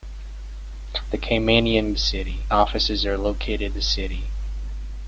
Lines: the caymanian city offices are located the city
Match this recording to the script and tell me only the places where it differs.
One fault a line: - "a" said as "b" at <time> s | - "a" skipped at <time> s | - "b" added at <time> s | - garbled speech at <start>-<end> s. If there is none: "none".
none